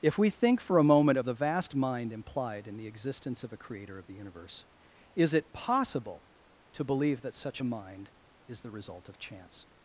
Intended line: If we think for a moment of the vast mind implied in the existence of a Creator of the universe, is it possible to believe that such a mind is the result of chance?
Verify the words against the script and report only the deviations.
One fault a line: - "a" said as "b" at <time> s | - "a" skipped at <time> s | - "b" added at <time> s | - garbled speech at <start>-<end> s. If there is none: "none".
none